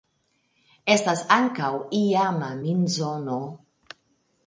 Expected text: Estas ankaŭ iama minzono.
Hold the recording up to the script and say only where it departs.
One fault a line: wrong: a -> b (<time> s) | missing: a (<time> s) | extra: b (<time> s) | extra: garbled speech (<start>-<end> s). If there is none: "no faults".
no faults